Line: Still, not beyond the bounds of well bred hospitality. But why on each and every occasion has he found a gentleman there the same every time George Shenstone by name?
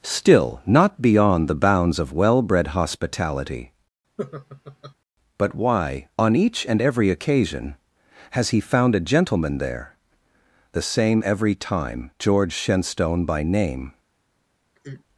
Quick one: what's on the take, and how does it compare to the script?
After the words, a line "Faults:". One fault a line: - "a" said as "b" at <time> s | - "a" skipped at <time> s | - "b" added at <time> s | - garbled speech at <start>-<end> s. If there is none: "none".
Still, not beyond the bounds of well bred hospitality. But why on each and every occasion has he found a gentleman there the same every time George Shenstone by name?
Faults:
none